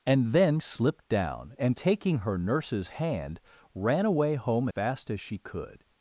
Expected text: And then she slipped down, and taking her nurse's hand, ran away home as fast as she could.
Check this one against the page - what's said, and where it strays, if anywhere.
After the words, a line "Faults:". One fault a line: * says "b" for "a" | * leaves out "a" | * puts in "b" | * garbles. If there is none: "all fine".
And then slipped down, and taking her nurse's hand, ran away home fast as she could.
Faults:
* leaves out "she"
* leaves out "as"